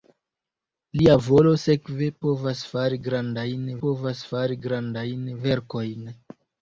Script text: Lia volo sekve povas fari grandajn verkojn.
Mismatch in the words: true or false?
true